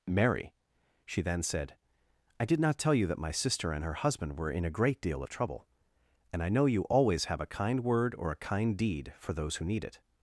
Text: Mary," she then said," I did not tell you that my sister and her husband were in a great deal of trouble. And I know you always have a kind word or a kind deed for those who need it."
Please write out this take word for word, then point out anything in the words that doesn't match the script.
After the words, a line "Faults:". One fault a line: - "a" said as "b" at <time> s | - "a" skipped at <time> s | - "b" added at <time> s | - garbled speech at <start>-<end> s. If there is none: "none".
Mary," she then said," I did not tell you that my sister and her husband were in a great deal of trouble. And I know you always have a kind word or a kind deed for those who need it."
Faults:
none